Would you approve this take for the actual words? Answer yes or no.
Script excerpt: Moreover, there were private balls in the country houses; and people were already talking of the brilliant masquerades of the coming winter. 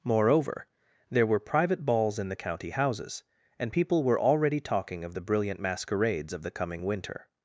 no